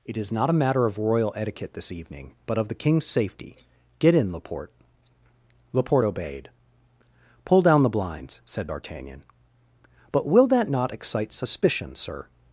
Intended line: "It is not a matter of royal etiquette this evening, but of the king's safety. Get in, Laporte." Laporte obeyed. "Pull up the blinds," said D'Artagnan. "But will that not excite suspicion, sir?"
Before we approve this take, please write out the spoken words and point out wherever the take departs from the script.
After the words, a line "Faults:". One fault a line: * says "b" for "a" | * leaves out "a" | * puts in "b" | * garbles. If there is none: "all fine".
"It is not a matter of royal etiquette this evening, but of the king's safety. Get in, Laporte." Laporte obeyed. "Pull down the blinds," said D'Artagnan. "But will that not excite suspicion, sir?"
Faults:
* says "down" for "up"